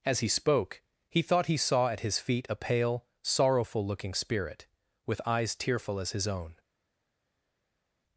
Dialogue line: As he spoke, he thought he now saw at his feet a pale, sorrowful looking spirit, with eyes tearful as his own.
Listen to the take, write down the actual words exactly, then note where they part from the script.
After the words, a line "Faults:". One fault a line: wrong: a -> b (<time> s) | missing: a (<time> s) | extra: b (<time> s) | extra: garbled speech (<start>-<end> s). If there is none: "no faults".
As he spoke, he thought he saw at his feet a pale, sorrowful looking spirit, with eyes tearful as his own.
Faults:
missing: now (1.6 s)